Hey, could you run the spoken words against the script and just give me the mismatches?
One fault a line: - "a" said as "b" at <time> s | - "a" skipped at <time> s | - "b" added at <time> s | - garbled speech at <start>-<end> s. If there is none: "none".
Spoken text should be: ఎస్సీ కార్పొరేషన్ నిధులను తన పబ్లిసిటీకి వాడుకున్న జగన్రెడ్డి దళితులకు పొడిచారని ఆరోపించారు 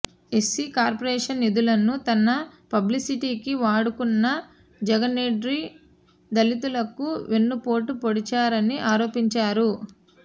- "వెన్నుపోటు" added at 7.3 s